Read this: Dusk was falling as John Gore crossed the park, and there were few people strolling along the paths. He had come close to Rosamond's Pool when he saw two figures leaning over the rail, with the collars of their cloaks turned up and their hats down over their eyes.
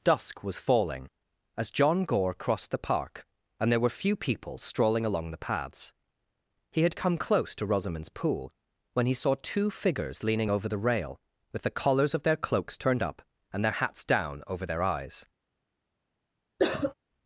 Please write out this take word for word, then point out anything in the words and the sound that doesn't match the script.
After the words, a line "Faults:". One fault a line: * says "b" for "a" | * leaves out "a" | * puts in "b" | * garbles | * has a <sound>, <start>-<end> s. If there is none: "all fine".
Dusk was falling as John Gore crossed the park, and there were few people strolling along the paths. He had come close to Rosamond's Pool when he saw two figures leaning over the rail, with the collars of their cloaks turned up and their hats down over their eyes.
Faults:
* has a cough, 16.6-16.9 s